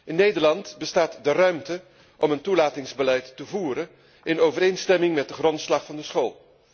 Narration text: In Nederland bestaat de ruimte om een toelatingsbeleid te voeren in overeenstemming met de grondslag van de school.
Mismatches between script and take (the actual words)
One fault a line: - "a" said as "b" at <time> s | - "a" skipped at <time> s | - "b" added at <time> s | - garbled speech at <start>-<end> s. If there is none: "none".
none